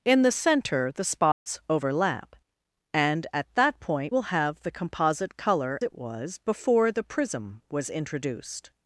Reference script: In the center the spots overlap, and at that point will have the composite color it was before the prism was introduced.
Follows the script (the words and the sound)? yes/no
no